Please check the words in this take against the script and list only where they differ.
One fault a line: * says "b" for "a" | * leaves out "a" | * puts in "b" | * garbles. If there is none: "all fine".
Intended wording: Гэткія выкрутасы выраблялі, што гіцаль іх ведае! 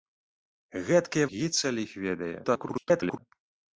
* leaves out "выкрутасы выраблялі што"
* garbles